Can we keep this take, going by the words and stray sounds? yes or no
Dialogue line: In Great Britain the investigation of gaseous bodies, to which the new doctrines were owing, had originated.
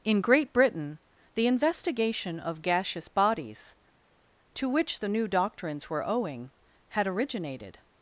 yes